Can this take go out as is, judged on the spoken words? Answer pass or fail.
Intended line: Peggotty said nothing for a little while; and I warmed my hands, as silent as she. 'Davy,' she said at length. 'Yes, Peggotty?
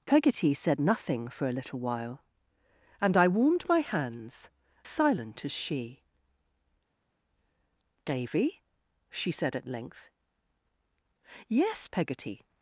fail